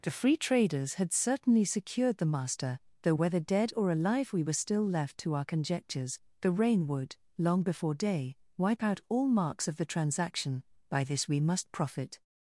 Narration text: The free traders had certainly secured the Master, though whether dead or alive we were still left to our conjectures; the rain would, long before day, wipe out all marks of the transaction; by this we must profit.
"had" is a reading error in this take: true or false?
false